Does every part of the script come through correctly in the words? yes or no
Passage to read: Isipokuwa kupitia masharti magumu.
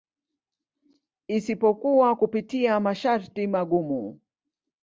yes